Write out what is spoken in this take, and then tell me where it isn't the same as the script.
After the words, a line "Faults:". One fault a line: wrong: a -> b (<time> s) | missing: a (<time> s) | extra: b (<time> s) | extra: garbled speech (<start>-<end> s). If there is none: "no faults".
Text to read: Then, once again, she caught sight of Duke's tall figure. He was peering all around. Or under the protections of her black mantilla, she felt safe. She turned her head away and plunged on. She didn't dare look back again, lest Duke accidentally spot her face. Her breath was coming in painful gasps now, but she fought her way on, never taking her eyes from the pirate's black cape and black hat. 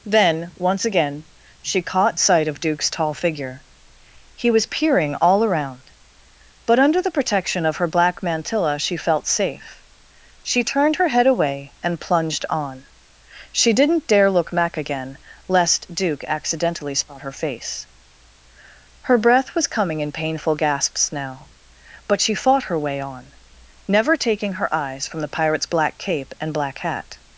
Then, once again, she caught sight of Duke's tall figure. He was peering all around. But under the protection of her black mantilla, she felt safe. She turned her head away and plunged on. She didn't dare look back again, lest Duke accidentally spot her face. Her breath was coming in painful gasps now, but she fought her way on, never taking her eyes from the pirate's black cape and black hat.
Faults:
wrong: Or -> But (6.6 s)
wrong: protections -> protection (7.1 s)